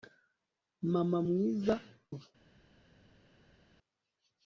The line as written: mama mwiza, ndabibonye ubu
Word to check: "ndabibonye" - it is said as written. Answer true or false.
false